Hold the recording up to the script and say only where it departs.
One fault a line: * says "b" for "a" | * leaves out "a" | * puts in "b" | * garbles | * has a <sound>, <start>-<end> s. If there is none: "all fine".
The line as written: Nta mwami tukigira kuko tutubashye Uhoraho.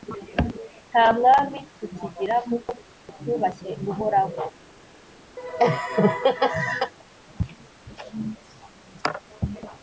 * has a laugh, 5.4-6.9 s